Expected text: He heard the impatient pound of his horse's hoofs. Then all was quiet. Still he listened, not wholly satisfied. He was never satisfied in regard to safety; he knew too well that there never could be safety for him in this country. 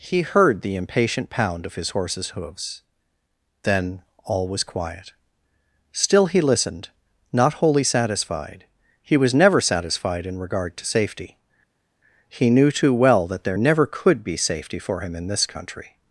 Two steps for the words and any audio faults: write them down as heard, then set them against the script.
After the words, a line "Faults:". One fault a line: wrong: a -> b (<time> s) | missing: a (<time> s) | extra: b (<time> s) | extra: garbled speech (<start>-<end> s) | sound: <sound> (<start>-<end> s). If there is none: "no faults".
He heard the impatient pound of his horse's hoofs. Then all was quiet. Still he listened, not wholly satisfied. He was never satisfied in regard to safety; he knew too well that there never could be safety for him in this country.
Faults:
no faults